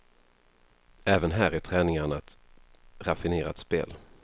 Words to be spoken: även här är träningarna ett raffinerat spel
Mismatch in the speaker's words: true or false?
false